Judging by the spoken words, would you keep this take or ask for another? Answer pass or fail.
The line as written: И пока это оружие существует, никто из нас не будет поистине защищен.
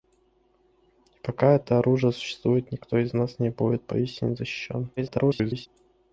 fail